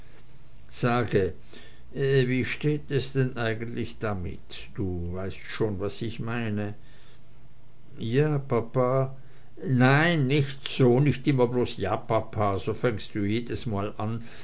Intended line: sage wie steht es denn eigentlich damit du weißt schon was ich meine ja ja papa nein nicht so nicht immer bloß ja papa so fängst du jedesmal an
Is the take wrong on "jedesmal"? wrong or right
right